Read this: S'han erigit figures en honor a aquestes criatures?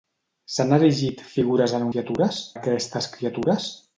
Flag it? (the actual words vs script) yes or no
yes